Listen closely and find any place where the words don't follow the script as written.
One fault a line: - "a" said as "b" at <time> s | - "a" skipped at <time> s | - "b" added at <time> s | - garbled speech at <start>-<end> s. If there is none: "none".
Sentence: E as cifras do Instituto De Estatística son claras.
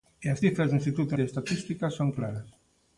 none